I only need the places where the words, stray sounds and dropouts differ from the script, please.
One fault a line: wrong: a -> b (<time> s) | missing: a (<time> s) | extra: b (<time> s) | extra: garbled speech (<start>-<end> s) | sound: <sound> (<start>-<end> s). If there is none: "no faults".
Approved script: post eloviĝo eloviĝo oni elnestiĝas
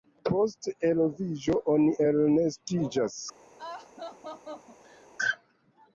missing: eloviĝo (1.6 s)
sound: laugh (3.6-5.1 s)